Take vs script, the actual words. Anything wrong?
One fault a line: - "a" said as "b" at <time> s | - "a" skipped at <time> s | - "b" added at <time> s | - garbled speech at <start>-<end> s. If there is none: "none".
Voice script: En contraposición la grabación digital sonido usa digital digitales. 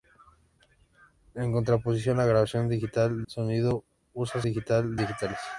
none